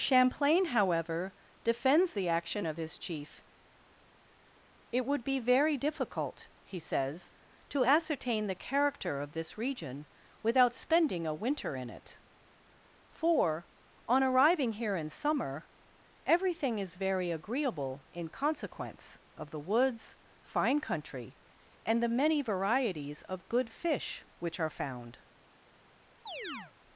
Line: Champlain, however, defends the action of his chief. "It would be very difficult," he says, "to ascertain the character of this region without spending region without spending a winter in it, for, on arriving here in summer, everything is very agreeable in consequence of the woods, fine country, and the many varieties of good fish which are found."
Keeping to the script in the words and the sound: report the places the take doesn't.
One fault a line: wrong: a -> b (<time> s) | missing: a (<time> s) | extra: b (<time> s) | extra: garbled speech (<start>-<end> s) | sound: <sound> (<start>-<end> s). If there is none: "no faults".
missing: region without spending (11.3 s)
sound: chirp (26.3-26.7 s)